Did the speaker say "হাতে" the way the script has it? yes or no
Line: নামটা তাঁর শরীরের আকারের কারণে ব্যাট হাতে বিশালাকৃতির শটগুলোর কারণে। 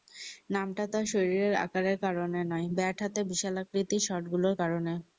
yes